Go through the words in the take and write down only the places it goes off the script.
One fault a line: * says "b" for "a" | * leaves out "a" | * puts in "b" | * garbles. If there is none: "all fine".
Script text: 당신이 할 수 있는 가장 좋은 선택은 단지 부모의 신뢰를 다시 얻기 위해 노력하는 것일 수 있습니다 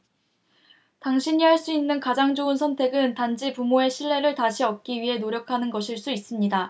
all fine